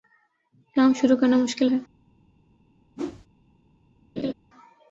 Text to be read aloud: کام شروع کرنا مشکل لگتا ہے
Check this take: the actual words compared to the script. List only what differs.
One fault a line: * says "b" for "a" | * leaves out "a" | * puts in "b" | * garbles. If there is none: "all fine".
* leaves out "لگتا"